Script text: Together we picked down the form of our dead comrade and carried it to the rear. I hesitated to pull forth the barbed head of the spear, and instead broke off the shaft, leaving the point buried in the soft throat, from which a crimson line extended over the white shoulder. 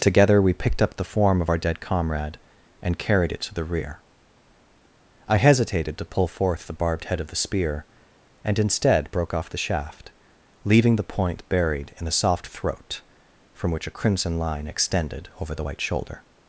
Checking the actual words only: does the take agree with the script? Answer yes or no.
no